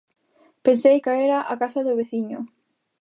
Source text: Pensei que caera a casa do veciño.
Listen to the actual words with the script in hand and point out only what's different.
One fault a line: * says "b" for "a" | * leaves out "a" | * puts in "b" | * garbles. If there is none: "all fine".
* leaves out "que"